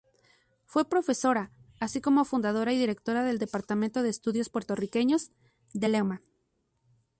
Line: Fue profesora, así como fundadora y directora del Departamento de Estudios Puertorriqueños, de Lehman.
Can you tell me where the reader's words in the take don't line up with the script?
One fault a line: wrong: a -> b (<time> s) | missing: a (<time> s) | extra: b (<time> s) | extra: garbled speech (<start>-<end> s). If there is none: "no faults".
no faults